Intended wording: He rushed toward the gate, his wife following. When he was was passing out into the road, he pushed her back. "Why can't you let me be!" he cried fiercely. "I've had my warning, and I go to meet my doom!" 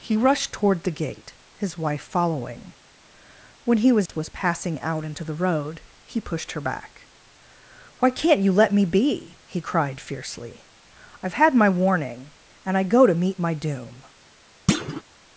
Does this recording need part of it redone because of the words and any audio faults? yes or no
yes